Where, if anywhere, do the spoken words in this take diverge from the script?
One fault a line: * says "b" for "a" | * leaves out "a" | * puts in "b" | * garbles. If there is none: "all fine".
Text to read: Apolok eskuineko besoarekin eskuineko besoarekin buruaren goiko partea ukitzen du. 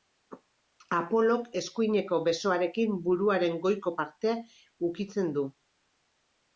* leaves out "eskuineko besoarekin"